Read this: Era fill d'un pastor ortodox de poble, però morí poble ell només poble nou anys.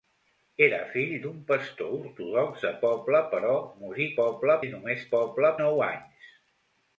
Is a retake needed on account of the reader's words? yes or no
no